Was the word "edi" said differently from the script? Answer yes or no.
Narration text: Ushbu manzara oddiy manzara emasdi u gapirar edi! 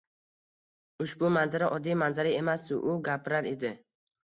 no